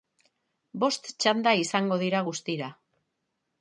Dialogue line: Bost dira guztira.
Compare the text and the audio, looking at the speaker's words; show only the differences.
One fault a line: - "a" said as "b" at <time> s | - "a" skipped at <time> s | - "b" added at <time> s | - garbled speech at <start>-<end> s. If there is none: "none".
- "txanda izango" added at 1.2 s